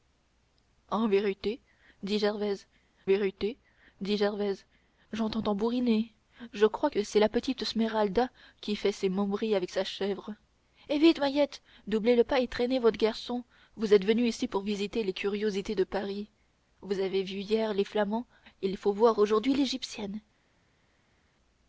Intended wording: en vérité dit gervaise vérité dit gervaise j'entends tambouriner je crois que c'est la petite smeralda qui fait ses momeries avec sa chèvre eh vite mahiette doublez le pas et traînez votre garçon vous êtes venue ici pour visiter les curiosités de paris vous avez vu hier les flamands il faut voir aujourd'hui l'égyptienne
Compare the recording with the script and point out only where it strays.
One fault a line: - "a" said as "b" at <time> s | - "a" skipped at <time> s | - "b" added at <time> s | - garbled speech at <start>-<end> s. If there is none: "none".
none